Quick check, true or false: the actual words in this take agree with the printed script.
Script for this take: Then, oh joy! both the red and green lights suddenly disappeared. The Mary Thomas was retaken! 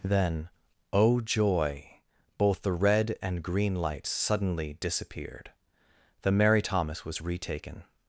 true